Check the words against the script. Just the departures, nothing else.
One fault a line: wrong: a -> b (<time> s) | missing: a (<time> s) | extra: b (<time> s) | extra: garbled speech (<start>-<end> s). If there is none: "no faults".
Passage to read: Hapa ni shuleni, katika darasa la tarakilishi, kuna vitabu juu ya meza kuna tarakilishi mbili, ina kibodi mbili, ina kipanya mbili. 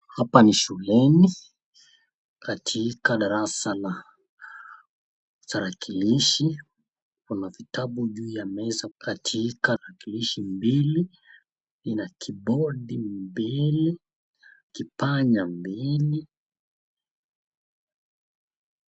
wrong: kuna -> katika (9.0 s)
missing: ina (14.0 s)